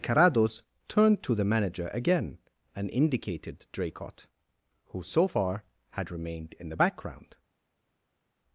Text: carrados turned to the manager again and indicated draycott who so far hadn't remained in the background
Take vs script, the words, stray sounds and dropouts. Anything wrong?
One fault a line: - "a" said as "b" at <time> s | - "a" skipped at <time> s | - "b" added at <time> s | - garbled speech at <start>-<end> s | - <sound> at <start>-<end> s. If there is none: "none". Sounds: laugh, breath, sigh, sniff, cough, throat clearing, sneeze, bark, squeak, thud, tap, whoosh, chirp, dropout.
- "hadn't" said as "had" at 5.9 s